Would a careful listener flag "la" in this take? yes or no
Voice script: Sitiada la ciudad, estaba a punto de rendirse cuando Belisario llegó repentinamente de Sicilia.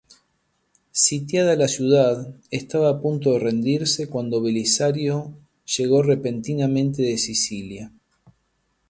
no